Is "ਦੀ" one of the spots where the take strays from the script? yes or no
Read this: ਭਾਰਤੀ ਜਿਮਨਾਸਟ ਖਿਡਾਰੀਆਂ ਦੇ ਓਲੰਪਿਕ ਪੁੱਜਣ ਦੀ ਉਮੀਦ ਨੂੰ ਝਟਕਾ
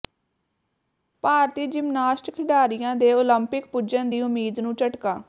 no